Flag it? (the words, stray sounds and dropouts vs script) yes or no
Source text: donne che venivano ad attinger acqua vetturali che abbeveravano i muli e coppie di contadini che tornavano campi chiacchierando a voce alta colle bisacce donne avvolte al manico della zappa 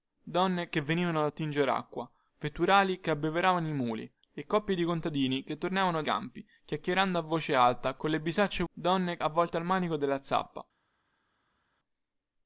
no